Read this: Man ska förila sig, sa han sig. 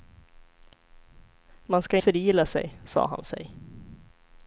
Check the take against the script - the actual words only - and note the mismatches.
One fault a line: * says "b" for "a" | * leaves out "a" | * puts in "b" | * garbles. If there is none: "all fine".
all fine